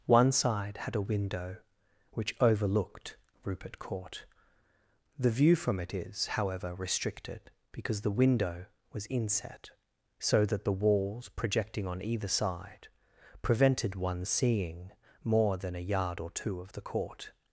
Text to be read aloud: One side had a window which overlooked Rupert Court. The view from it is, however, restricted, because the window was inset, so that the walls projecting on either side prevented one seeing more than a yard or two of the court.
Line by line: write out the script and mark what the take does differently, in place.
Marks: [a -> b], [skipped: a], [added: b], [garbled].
One side had a window which overlooked Rupert Court. The view from it is, however, restricted, because the window was inset, so that the walls projecting on either side prevented one seeing more than a yard or two of the court.